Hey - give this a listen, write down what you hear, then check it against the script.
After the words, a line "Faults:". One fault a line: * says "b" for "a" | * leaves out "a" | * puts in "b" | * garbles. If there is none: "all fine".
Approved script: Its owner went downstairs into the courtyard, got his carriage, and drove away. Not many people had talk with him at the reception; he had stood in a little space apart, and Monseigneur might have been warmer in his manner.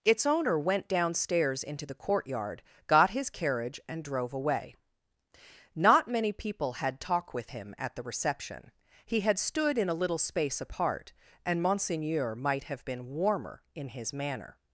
Its owner went downstairs into the courtyard, got his carriage, and drove away. Not many people had talk with him at the reception; he had stood in a little space apart, and Monseigneur might have been warmer in his manner.
Faults:
all fine